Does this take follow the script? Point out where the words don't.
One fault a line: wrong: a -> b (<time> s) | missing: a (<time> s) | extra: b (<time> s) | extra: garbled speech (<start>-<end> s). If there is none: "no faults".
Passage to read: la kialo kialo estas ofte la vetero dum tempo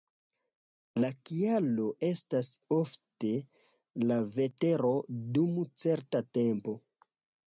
missing: kialo (1.8 s)
extra: certa (5.8 s)